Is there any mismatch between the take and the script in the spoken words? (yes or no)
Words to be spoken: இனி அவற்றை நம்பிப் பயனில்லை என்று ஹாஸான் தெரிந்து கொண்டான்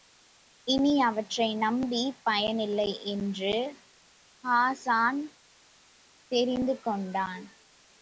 no